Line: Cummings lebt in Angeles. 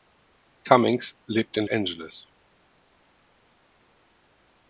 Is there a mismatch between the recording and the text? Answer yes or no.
no